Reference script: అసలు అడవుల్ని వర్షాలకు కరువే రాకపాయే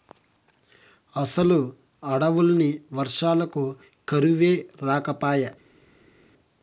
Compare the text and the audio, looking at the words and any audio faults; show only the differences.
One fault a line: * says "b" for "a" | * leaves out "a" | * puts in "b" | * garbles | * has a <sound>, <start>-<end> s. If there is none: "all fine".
all fine